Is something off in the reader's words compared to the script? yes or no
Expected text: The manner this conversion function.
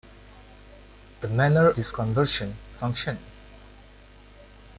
no